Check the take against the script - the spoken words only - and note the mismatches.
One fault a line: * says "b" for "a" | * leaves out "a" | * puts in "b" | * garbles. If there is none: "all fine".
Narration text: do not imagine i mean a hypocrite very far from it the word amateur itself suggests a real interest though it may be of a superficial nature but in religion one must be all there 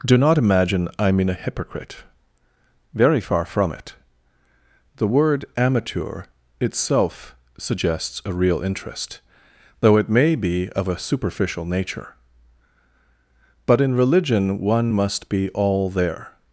all fine